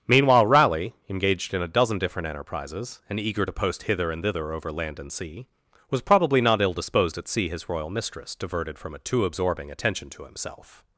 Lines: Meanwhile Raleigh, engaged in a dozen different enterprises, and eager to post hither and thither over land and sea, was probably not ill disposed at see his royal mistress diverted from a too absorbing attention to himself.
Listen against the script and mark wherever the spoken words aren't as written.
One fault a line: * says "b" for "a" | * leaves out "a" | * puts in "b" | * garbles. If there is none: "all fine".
all fine